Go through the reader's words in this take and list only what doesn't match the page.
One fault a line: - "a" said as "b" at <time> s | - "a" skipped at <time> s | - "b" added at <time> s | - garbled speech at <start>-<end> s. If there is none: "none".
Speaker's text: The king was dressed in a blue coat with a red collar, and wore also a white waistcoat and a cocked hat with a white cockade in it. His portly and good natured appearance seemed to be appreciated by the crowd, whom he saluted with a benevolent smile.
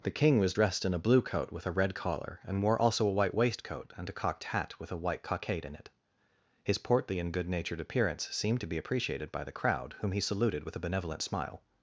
none